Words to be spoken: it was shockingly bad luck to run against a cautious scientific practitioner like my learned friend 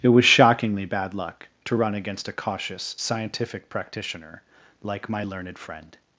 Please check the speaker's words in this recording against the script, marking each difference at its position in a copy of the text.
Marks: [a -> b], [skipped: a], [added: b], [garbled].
it was shockingly bad luck to run against a cautious scientific practitioner like my learned friend